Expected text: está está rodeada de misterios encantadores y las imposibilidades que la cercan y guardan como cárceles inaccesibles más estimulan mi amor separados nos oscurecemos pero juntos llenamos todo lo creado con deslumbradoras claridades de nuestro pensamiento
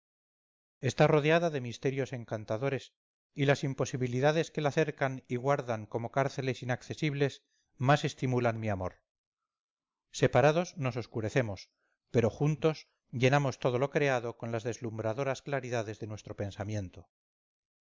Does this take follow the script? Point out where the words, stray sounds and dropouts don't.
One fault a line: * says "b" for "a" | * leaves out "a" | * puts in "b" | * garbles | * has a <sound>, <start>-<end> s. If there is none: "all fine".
* leaves out "está"
* puts in "las"